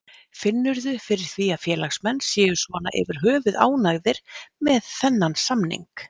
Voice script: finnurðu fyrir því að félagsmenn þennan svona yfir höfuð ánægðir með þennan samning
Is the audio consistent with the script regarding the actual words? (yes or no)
no